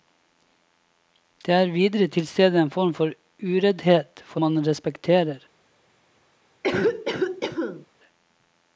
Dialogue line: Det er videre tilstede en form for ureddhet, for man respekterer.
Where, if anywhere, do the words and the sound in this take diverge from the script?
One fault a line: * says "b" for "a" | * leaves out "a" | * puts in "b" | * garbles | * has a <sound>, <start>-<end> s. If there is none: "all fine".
* has a cough, 6.6-7.9 s